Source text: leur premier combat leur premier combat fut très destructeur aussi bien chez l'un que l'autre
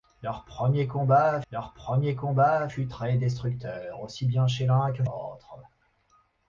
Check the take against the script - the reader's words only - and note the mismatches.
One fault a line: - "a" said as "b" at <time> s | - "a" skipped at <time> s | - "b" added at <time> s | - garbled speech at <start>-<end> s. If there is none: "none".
none